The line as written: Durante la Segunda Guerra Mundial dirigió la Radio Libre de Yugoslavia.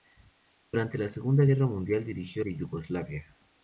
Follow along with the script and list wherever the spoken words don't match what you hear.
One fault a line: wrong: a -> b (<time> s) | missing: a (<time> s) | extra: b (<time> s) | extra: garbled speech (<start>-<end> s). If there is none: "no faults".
missing: la Radio Libre (2.4 s)